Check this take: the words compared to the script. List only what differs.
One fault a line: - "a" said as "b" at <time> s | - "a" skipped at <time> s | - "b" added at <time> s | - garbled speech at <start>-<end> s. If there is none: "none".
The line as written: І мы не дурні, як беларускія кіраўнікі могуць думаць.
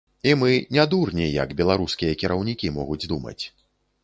none